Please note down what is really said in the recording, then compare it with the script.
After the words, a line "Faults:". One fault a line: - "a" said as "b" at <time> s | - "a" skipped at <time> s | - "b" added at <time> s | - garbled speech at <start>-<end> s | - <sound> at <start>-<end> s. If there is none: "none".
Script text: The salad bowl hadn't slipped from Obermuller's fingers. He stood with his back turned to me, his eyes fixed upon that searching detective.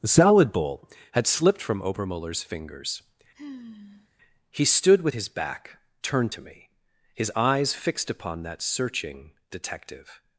The salad bowl had slipped from Obermuller's fingers. He stood with his back turned to me, his eyes fixed upon that searching detective.
Faults:
- "hadn't" said as "had" at 1.1 s
- sigh at 3.3-4.1 s